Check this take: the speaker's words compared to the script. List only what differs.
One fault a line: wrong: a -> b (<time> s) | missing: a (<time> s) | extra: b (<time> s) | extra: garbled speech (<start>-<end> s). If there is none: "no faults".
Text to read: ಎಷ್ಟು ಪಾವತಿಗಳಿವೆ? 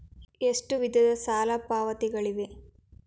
extra: ವಿಧದ ಸಾಲ (0.8 s)